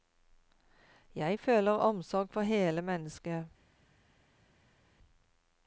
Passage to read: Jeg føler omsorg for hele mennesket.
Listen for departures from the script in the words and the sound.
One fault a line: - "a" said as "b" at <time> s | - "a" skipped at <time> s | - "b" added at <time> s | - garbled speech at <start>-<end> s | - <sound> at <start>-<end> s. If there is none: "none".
none